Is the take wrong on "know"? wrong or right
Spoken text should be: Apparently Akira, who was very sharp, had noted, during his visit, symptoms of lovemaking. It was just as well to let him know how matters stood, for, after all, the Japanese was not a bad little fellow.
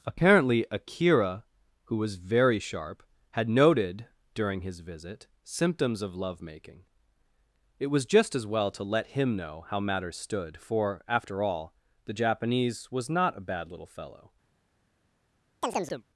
right